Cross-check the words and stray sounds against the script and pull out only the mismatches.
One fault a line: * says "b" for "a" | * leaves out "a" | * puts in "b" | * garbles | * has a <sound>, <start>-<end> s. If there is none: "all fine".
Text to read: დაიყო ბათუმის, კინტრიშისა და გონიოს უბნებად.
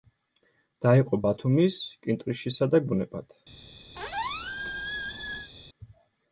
* leaves out "გონიოს"
* has a squeak, 4.0-5.5 s